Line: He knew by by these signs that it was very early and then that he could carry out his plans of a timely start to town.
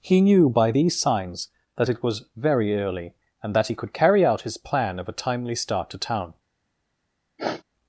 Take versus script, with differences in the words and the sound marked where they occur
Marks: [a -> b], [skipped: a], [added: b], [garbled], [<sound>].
He knew by [skipped: by] these signs that it was very early and [skipped: then] that he could carry out his [plans -> plan] of a timely start to town. [sniff]